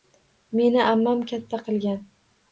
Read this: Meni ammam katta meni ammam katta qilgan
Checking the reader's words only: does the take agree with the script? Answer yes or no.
no